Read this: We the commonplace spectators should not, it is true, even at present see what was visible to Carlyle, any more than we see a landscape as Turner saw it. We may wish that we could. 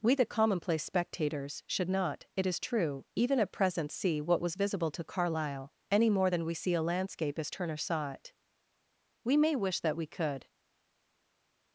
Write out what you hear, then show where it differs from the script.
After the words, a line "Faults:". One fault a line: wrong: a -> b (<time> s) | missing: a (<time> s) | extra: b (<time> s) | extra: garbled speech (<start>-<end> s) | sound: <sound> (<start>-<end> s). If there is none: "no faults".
We the commonplace spectators should not, it is true, even at present see what was visible to Carlyle, any more than we see a landscape as Turner saw it. We may wish that we could.
Faults:
no faults